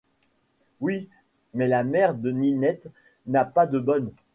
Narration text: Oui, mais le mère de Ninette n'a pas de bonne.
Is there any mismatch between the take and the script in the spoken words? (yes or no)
yes